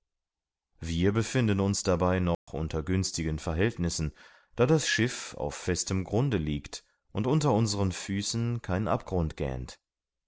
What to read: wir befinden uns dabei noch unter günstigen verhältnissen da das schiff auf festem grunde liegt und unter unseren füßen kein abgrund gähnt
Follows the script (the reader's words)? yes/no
yes